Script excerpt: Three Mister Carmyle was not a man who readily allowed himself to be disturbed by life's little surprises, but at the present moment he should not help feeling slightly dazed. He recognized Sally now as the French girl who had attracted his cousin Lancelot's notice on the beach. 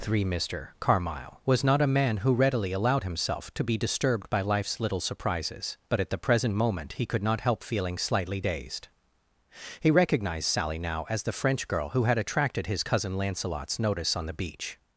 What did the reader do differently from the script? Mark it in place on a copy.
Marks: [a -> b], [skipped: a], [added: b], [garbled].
Three Mister Carmyle was not a man who readily allowed himself to be disturbed by life's little surprises, but at the present moment he [should -> could] not help feeling slightly dazed. He recognized Sally now as the French girl who had attracted his cousin Lancelot's notice on the beach.